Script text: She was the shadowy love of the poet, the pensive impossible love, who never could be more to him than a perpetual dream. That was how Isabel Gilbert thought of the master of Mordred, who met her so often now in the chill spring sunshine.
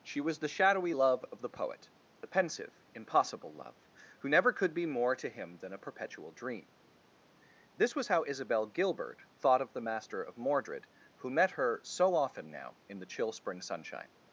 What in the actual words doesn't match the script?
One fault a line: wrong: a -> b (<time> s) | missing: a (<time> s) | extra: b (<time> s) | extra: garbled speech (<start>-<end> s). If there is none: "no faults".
wrong: That -> This (7.8 s)